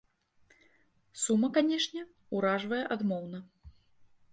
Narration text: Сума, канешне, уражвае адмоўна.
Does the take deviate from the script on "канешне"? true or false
false